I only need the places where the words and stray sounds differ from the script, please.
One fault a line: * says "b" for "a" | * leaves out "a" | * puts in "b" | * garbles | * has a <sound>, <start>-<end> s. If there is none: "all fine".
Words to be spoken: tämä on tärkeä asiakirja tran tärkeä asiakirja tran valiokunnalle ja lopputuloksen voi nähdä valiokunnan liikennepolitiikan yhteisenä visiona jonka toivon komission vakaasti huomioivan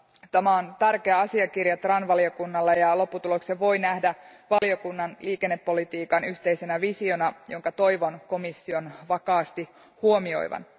* leaves out "tärkeä asiakirja tran"
* has a dropout, 4.6-4.6 s